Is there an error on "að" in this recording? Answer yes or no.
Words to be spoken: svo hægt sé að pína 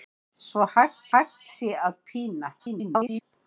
no